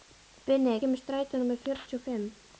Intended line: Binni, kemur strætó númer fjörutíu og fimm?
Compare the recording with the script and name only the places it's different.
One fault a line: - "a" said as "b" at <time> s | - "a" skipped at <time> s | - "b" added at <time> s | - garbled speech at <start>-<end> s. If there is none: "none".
none